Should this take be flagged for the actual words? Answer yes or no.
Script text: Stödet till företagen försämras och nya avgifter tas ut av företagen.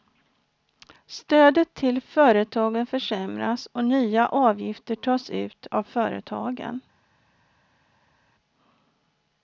no